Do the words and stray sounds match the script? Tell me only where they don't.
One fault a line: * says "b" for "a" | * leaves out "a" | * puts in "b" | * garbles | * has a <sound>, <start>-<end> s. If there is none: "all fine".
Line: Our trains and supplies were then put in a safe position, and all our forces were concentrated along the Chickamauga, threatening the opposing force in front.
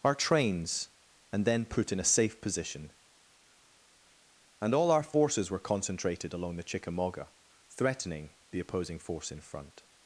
* leaves out "supplies were"